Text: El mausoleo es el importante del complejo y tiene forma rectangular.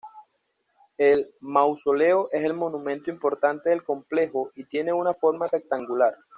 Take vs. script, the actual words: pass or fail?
fail